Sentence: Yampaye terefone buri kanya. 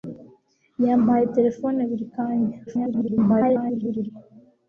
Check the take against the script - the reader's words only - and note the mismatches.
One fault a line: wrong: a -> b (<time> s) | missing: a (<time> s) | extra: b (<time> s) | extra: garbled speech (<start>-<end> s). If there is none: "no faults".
extra: garbled speech (2.7-4.1 s)